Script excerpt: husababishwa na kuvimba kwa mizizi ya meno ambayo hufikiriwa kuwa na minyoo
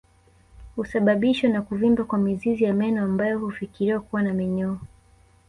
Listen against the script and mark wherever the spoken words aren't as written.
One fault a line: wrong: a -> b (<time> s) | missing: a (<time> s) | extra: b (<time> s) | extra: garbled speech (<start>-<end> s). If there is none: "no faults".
no faults